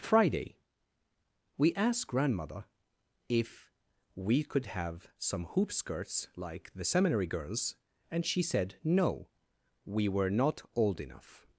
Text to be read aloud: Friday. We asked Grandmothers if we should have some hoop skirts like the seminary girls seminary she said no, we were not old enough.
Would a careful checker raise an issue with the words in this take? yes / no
yes